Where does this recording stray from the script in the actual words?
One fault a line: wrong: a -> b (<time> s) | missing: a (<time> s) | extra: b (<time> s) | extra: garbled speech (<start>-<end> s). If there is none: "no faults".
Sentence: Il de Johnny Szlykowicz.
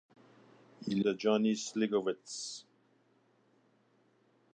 no faults